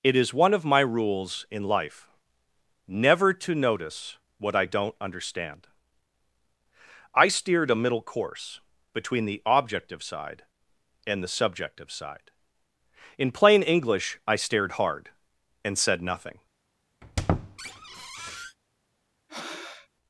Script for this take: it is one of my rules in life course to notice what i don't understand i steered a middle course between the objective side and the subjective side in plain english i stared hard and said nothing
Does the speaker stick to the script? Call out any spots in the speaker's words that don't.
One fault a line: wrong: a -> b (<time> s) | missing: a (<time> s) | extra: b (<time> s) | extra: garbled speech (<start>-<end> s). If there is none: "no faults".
wrong: course -> never (2.9 s)